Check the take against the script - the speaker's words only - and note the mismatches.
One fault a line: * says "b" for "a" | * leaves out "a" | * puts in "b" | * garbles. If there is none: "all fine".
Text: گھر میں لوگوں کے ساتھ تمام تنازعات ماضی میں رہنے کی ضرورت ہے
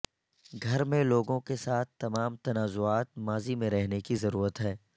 all fine